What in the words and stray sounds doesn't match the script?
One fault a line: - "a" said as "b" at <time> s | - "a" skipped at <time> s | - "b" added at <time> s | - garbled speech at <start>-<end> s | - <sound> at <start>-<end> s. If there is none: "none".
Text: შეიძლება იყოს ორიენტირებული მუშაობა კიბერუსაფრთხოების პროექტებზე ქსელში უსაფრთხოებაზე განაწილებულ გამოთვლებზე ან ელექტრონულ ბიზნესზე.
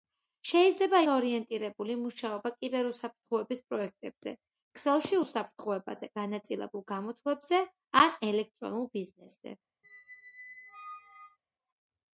- "იყოს" skipped at 1.0 s
- squeak at 9.8-11.4 s